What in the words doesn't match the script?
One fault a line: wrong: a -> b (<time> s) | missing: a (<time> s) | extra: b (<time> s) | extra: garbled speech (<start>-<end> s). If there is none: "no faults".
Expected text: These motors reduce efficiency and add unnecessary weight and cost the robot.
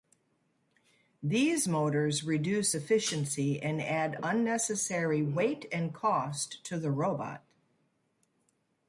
extra: to (6.6 s)